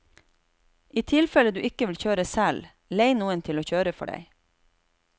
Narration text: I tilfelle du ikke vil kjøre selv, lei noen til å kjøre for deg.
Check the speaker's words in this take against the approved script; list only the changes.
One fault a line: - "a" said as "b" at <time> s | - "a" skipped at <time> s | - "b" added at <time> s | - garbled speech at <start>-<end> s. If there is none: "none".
none